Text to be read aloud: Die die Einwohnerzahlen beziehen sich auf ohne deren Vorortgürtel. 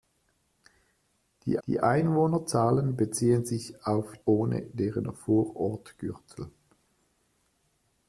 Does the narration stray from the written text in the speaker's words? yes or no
no